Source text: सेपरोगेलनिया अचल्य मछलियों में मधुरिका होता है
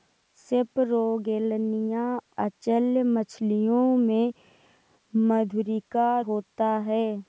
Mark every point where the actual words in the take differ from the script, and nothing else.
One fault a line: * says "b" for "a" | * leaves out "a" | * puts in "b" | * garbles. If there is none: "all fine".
all fine